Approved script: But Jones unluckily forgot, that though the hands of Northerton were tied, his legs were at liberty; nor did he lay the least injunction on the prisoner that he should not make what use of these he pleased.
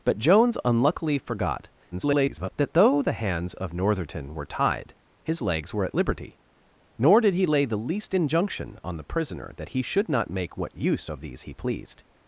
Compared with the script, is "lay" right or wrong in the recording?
right